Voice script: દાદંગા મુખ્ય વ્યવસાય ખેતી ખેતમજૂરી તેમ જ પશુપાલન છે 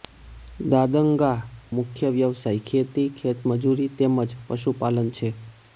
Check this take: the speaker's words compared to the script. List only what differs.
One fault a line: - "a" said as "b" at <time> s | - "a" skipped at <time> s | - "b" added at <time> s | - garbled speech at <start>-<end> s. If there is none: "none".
none